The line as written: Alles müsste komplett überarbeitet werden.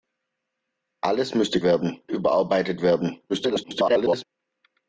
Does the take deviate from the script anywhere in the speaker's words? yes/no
yes